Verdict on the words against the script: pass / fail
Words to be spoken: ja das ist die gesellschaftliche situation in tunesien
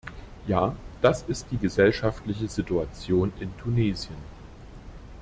pass